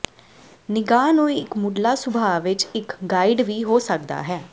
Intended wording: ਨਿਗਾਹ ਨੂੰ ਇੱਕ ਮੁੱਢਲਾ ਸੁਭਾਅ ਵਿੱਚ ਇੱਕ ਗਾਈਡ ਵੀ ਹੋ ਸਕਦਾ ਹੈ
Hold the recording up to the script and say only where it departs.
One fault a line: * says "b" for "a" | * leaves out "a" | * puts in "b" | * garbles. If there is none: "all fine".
all fine